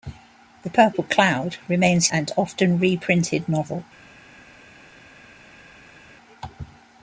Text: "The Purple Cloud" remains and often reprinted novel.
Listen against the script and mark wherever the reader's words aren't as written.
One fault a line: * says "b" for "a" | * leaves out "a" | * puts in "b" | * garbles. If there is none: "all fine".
all fine